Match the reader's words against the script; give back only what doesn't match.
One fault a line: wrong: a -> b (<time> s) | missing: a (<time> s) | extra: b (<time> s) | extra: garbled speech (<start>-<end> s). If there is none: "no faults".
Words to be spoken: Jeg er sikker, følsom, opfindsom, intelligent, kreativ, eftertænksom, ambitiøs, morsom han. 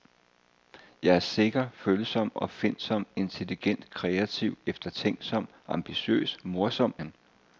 no faults